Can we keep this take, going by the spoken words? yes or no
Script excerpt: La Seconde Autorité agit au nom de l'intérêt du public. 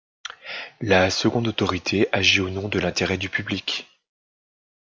yes